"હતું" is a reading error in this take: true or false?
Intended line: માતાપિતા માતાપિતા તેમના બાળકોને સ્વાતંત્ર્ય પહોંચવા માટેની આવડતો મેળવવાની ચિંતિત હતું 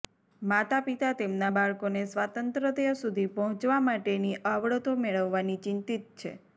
true